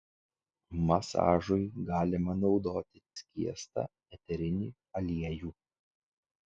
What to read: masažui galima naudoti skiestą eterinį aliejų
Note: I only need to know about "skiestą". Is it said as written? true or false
true